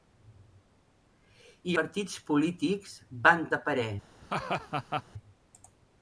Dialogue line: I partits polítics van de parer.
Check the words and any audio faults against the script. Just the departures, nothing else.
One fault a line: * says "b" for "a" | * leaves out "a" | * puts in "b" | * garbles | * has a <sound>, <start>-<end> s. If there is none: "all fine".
* has a laugh, 4.2-5.0 s